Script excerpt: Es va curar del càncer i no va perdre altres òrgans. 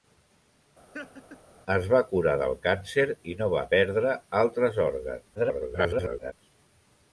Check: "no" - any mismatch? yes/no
no